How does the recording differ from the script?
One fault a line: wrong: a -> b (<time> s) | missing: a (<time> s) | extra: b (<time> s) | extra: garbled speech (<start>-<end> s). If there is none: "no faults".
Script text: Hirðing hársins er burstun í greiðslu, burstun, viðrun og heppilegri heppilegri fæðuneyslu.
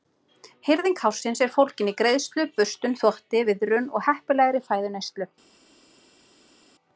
wrong: burstun -> fólgin (1.6 s)
extra: þvotti (3.0 s)
missing: heppilegri (4.6 s)